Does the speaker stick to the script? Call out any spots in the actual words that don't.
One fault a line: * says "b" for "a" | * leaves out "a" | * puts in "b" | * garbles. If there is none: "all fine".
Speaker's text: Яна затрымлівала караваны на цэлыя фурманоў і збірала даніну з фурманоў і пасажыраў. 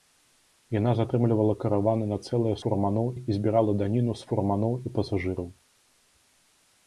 all fine